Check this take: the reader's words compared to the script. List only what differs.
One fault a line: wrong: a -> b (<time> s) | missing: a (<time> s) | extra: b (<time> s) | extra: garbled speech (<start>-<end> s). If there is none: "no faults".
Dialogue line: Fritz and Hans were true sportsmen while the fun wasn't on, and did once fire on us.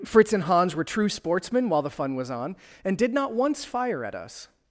wrong: wasn't -> was (2.1 s)
extra: not (3.1 s)
wrong: on -> at (4.0 s)